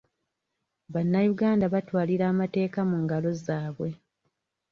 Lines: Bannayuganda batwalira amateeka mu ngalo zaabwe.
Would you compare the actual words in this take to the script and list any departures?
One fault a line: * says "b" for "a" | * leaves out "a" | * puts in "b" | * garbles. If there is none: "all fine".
all fine